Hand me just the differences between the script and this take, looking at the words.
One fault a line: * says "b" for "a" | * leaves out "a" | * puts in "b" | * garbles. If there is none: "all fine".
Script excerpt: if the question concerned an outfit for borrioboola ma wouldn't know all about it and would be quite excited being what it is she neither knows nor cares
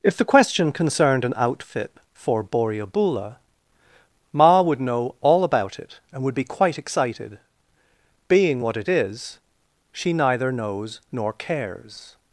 * says "would" for "wouldn't"